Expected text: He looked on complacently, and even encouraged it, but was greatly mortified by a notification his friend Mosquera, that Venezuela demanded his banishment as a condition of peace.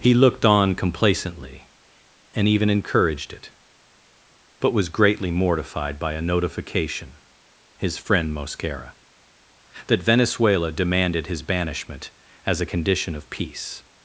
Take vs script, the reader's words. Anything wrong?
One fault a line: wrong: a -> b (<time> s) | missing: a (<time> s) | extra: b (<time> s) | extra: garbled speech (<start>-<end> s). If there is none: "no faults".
no faults